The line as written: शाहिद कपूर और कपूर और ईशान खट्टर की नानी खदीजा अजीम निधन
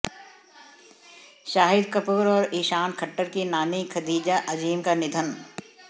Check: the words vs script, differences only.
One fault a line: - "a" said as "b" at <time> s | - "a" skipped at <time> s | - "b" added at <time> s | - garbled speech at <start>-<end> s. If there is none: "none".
- "कपूर और" skipped at 2.5 s
- "का" added at 4.8 s